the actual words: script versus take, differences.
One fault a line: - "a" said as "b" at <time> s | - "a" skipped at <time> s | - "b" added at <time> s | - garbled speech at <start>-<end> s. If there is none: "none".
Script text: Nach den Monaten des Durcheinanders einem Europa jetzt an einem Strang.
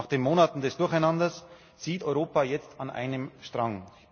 - "einem" said as "zieht" at 1.7 s